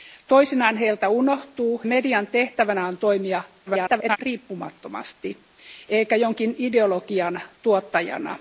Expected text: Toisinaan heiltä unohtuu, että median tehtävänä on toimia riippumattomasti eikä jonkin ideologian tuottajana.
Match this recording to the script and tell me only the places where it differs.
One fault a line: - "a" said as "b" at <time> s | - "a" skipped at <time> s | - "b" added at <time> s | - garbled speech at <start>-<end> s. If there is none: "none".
- "että" skipped at 1.8 s
- garbled speech at 3.7-4.2 s